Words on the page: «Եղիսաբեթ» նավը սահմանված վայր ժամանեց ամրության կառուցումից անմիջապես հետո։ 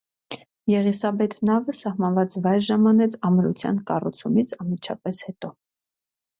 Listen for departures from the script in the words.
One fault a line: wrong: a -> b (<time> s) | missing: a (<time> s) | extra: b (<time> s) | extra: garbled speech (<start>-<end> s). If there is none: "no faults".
no faults